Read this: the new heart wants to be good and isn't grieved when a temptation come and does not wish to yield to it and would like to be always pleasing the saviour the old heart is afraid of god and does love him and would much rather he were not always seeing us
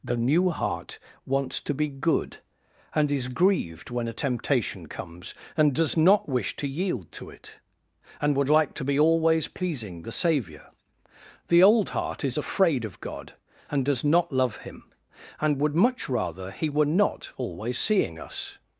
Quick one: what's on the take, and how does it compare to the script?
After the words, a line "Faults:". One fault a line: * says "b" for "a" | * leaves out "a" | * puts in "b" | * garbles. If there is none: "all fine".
the new heart wants to be good and is grieved when a temptation comes and does not wish to yield to it and would like to be always pleasing the saviour the old heart is afraid of god and does not love him and would much rather he were not always seeing us
Faults:
* says "is" for "isn't"
* says "comes" for "come"
* puts in "not"